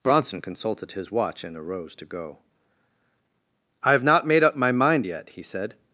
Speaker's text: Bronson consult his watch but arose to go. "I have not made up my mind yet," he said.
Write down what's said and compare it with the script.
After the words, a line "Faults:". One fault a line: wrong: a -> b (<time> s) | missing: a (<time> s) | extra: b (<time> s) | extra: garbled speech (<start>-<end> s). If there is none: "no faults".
Bronson consulted his watch and arose to go. "I have not made up my mind yet," he said.
Faults:
wrong: consult -> consulted (0.4 s)
wrong: but -> and (1.4 s)